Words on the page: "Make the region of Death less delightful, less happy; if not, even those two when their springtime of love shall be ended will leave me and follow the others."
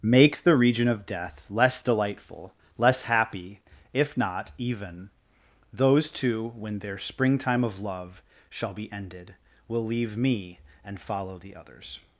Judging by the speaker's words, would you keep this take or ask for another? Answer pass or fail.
pass